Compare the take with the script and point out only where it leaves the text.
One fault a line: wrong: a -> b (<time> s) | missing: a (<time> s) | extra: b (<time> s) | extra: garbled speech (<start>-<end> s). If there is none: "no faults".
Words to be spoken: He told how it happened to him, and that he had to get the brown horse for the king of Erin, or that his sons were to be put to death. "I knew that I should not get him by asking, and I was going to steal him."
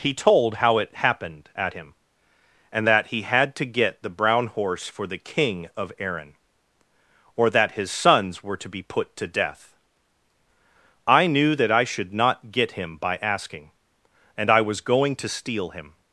wrong: to -> at (1.6 s)